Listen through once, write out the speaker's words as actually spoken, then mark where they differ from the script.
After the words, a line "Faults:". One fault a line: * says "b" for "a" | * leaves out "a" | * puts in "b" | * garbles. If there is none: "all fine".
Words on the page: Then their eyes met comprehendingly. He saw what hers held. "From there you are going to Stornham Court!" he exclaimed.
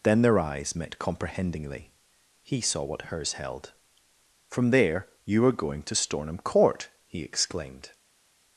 Then their eyes met comprehendingly. He saw what hers held. "From there you are going to Stornham Court!" he exclaimed.
Faults:
all fine